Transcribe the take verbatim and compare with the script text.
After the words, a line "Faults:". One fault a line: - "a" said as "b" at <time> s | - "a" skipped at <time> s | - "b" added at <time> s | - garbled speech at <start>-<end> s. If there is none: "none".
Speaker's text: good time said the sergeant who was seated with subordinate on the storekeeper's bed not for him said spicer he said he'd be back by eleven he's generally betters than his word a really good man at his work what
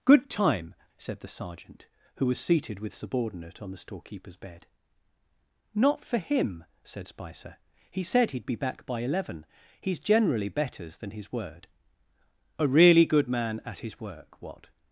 good time said the sergeant who was seated with subordinate on the storekeeper's bed not for him said spicer he said he'd be back by eleven he's generally betters than his word a really good man at his work what
Faults:
none